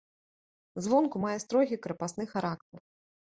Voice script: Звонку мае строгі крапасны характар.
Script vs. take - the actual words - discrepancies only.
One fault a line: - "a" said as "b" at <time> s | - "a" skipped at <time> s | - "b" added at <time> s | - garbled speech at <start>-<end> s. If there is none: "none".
none